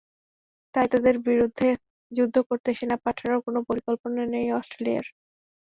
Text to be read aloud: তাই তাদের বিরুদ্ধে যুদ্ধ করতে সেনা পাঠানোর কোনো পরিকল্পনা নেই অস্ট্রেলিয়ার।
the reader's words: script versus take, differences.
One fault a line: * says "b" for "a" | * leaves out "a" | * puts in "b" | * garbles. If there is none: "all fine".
all fine